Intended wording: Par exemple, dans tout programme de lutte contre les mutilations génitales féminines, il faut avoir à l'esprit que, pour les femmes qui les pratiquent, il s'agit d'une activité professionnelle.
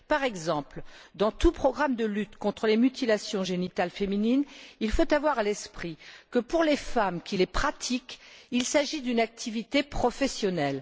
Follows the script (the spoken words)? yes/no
yes